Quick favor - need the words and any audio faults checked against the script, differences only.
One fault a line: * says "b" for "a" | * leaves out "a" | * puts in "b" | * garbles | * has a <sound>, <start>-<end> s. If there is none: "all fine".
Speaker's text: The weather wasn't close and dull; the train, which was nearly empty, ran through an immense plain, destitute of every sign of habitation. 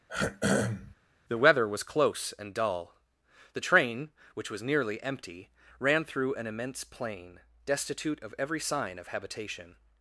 * has a throat clearing, 0.1-1.0 s
* says "was" for "wasn't"